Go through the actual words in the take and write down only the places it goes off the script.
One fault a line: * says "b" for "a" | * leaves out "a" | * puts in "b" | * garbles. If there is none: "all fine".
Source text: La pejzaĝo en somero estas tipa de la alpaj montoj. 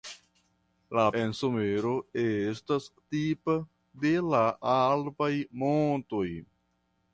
* leaves out "pejzaĝo"